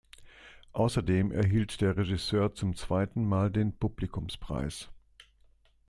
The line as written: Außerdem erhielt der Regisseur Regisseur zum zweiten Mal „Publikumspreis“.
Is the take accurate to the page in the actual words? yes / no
no